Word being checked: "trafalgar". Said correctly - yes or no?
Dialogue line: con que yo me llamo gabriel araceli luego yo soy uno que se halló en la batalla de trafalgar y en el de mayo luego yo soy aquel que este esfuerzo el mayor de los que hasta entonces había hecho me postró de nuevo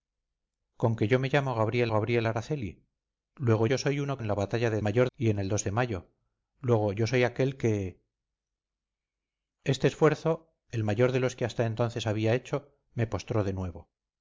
no